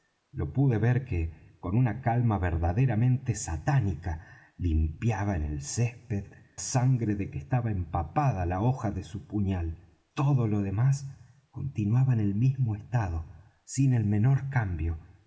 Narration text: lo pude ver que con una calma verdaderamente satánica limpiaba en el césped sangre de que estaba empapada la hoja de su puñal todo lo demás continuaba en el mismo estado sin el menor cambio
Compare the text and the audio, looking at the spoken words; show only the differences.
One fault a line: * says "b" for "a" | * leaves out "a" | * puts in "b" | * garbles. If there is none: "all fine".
all fine